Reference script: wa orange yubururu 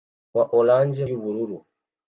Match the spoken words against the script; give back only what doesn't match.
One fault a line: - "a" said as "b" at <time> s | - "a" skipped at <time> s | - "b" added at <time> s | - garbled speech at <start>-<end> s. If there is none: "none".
none